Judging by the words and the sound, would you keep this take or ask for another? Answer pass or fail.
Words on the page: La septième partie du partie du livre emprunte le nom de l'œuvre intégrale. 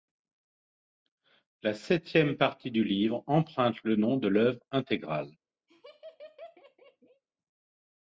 fail